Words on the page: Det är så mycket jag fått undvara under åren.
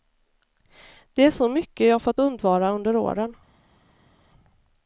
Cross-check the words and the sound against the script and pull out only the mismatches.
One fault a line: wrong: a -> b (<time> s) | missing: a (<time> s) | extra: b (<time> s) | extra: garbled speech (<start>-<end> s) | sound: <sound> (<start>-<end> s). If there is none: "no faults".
no faults